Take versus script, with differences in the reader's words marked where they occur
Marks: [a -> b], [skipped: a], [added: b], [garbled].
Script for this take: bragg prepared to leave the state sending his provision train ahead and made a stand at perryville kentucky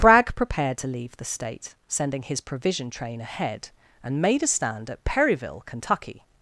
bragg prepared to leave the state sending his provision train ahead and made a stand at perryville kentucky